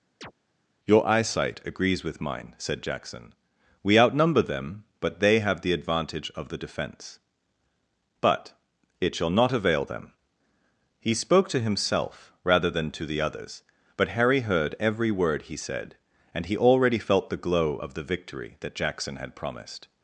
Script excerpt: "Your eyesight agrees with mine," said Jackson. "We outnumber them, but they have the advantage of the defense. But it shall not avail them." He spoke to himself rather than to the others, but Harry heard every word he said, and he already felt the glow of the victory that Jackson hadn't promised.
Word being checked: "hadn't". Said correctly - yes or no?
no